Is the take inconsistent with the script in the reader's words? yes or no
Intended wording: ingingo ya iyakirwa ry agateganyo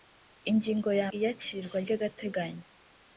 no